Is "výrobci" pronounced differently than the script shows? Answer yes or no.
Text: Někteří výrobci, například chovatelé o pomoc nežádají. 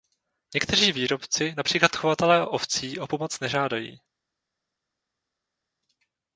no